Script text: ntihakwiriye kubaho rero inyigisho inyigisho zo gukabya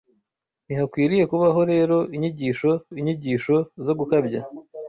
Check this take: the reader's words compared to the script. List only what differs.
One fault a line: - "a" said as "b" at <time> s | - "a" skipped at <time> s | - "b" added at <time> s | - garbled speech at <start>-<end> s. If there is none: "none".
none